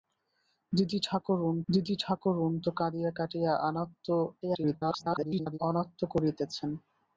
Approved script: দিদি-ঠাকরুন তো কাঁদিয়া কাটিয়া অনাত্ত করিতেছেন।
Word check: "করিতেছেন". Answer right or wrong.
right